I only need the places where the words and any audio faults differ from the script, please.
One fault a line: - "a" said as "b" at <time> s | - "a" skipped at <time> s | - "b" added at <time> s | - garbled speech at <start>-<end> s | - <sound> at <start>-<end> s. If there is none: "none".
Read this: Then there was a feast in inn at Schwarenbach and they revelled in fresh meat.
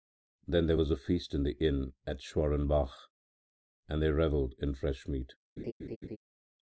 - "the" added at 1.4 s
- laugh at 5.6-6.2 s